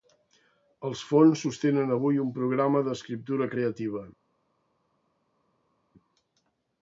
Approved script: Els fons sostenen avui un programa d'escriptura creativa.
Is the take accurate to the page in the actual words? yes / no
yes